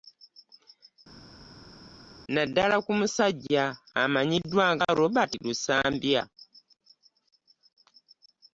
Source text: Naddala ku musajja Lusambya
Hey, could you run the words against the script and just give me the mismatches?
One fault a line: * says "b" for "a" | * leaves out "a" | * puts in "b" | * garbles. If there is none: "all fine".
* puts in "amanyiddwa nga Robert"